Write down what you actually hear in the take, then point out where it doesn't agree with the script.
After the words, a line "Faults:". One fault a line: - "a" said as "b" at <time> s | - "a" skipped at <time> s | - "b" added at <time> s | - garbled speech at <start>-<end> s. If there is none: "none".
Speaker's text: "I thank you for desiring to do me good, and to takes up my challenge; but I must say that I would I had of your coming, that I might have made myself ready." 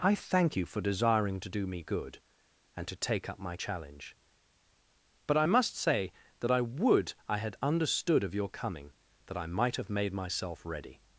"I thank you for desiring to do me good, and to take up my challenge; but I must say that I would I had understood of your coming, that I might have made myself ready."
Faults:
- "takes" said as "take" at 3.0 s
- "understood" added at 7.6 s